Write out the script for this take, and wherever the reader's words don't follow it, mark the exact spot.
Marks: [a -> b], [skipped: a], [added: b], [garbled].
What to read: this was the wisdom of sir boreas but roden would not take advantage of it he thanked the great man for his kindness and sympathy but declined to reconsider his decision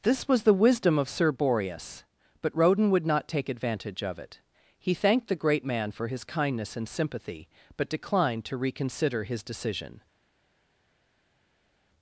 this was the wisdom of sir boreas but roden would not take advantage of it he thanked the great man for his kindness and sympathy but declined to reconsider his decision